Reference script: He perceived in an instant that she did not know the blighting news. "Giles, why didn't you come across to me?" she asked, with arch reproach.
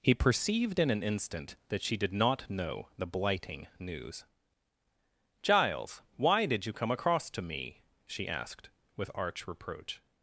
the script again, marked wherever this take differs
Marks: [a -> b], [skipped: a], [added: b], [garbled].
He perceived in an instant that she did not know the blighting news. "Giles, why [didn't -> did] you come across to me?" she asked, with arch reproach.